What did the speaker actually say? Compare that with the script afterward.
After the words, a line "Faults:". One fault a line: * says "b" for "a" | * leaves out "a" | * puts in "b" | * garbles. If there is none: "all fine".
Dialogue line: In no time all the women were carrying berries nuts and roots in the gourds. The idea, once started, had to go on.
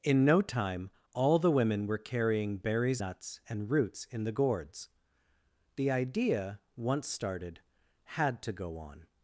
In no time all the women were carrying berries nuts and roots in the gourds. The idea, once started, had to go on.
Faults:
all fine